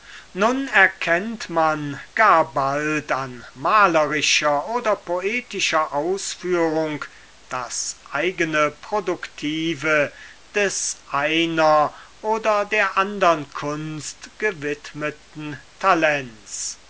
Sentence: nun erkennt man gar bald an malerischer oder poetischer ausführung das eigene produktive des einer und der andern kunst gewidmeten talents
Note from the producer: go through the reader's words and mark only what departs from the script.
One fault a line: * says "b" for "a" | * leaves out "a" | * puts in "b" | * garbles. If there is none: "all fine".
* says "oder" for "und"